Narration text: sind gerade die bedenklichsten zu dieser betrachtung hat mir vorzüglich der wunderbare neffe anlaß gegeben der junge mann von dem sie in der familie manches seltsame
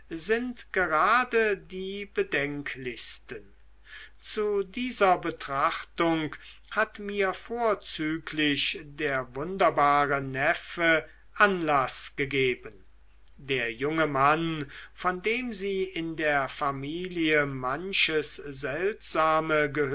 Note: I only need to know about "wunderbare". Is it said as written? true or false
true